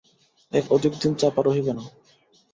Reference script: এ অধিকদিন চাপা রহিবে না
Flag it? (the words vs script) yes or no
no